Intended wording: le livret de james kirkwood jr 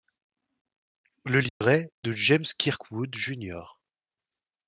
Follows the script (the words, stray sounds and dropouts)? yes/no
no